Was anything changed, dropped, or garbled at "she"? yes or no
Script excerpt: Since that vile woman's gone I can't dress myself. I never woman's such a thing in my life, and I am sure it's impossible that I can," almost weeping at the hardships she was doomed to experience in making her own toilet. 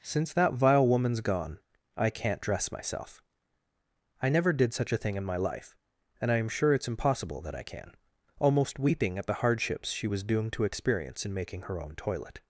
no